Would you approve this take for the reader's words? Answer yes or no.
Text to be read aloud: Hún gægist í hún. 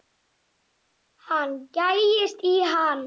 no